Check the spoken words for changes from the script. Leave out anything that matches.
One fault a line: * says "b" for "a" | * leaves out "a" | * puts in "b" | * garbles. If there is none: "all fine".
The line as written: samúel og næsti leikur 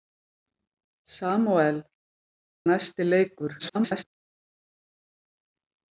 * leaves out "og"
* garbles